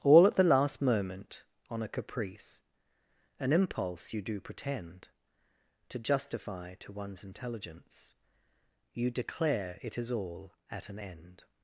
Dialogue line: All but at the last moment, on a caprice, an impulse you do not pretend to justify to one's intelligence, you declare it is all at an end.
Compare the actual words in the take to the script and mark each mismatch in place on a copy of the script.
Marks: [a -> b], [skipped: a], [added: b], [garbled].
All [skipped: but] at the last moment, on a caprice, an impulse you do [skipped: not] pretend to justify to one's intelligence, you declare it is all at an end.